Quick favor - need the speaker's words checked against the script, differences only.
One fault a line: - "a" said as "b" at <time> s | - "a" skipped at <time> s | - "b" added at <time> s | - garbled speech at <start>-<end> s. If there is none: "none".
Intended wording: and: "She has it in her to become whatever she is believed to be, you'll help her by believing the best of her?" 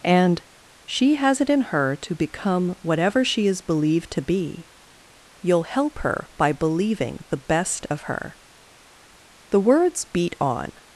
- "The words beat on" added at 9.5 s